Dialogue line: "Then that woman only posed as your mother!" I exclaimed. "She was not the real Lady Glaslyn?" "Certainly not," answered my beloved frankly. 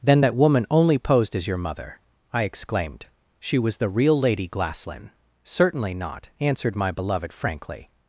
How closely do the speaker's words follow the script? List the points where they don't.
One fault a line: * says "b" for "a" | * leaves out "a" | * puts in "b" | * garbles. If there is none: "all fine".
* leaves out "not"